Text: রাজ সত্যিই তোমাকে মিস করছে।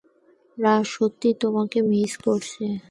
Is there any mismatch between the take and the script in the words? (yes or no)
no